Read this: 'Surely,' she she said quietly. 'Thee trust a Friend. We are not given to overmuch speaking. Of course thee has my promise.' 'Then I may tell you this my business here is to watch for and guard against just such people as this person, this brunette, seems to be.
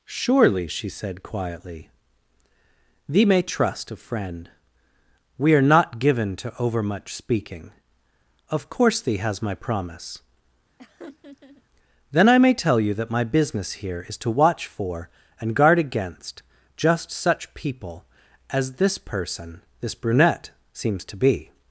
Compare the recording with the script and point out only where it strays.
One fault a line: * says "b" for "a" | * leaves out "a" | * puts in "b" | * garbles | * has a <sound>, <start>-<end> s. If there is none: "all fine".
* leaves out "she"
* puts in "may"
* has a laugh, 10.8-11.6 s
* says "that" for "this"